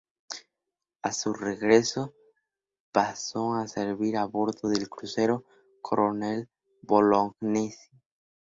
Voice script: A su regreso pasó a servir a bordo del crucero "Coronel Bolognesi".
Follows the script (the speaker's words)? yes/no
yes